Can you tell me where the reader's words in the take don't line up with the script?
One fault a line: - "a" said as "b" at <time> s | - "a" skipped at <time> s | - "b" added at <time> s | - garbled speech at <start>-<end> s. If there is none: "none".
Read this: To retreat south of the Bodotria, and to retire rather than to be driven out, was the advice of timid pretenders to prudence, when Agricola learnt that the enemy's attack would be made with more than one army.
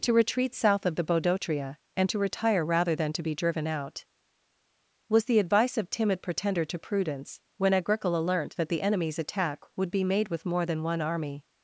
- "pretenders" said as "pretender" at 6.2 s